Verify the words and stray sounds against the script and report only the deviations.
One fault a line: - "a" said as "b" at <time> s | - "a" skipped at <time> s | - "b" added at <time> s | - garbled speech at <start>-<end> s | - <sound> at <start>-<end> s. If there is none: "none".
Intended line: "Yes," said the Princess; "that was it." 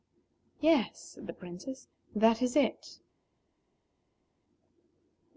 - "was" said as "is" at 2.4 s